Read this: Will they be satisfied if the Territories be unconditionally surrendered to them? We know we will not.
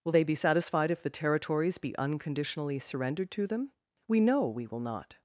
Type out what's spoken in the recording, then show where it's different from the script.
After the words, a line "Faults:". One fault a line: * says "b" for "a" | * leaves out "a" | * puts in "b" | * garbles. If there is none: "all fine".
Will they be satisfied if the Territories be unconditionally surrendered to them? We know we will not.
Faults:
all fine